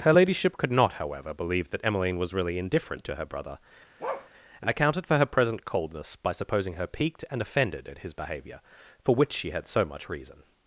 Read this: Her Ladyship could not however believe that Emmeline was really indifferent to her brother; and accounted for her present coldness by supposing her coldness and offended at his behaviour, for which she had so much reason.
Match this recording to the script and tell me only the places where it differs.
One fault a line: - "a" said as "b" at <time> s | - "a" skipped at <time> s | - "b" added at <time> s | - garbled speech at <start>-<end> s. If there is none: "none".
- "coldness" said as "piqued" at 6.9 s